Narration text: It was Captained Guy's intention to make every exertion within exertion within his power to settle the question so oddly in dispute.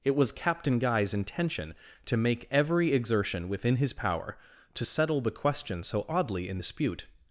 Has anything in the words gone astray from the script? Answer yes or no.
yes